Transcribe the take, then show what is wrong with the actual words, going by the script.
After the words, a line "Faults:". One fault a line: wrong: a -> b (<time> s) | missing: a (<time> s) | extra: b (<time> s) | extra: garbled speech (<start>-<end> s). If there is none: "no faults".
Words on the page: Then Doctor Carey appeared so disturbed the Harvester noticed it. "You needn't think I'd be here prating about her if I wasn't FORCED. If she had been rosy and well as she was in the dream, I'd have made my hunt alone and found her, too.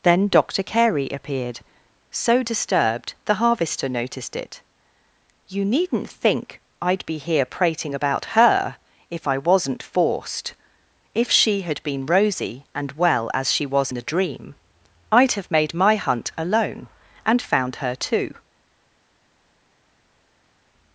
Then Doctor Carey appeared so disturbed the Harvester noticed it. "You needn't think I'd be here prating about her if I wasn't FORCED. If she had been rosy and well as she was the dream, I'd have made my hunt alone and found her, too.
Faults:
missing: in (13.9 s)